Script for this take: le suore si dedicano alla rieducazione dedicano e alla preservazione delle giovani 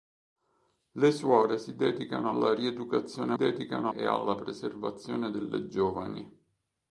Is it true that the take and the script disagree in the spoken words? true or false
false